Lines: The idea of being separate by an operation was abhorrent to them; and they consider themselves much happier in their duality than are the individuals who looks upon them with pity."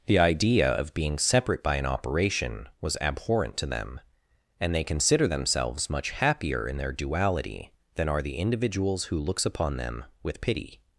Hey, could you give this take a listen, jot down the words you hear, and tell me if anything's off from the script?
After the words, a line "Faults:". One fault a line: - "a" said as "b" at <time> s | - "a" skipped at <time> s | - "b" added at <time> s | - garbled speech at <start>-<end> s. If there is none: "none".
The idea of being separate by an operation was abhorrent to them; and they consider themselves much happier in their duality than are the individuals who looks upon them with pity."
Faults:
none